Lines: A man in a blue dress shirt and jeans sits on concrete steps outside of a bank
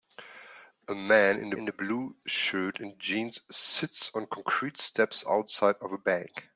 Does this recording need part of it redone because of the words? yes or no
yes